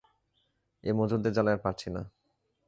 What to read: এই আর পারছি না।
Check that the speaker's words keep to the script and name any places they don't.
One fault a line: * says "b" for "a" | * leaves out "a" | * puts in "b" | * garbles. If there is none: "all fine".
* puts in "মজুরদের জ্বালায়"